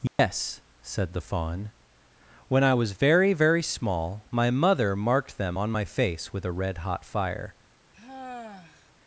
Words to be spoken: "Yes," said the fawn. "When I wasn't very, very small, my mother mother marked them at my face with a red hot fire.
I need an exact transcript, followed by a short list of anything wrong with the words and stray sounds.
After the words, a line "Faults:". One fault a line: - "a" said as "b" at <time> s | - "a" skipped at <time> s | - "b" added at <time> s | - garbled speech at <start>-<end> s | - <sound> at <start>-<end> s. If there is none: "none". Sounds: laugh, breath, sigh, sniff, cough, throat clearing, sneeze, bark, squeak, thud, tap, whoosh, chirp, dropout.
"Yes," said the fawn. "When I was very, very small, my mother marked them on my face with a red hot fire.
Faults:
- dropout at 0.1-0.2 s
- "wasn't" said as "was" at 2.7 s
- "mother" skipped at 5.0 s
- "at" said as "on" at 5.6 s
- sigh at 7.9-8.9 s